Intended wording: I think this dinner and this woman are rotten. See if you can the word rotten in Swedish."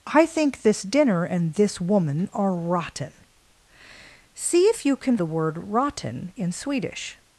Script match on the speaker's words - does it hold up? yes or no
yes